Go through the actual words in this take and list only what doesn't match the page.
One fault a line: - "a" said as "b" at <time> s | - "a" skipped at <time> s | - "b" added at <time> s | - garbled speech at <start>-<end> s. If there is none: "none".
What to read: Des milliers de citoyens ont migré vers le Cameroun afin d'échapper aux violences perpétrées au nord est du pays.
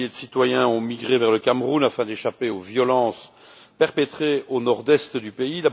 none